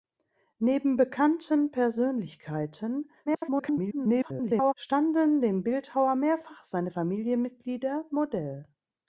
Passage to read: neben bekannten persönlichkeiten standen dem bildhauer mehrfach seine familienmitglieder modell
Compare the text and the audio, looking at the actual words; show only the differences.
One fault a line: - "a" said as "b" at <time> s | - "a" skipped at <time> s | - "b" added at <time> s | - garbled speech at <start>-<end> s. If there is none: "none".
- garbled speech at 3.3-4.7 s